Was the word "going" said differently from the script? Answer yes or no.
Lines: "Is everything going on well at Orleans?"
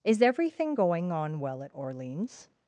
no